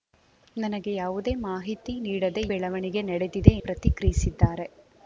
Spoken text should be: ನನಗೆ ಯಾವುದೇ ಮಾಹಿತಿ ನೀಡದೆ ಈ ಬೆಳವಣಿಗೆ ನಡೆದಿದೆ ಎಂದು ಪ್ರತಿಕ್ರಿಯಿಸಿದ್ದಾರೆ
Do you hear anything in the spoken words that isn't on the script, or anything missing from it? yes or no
yes